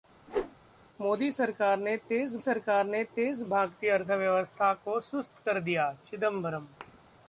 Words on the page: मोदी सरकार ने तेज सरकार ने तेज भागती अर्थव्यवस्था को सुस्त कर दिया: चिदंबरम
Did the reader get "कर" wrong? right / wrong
right